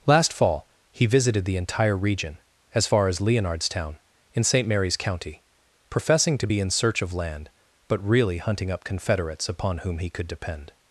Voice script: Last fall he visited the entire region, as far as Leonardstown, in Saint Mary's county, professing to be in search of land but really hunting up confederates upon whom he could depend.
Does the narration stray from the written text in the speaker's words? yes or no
no